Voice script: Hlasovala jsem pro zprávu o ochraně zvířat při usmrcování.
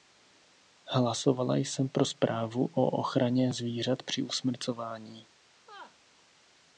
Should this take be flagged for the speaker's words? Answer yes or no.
no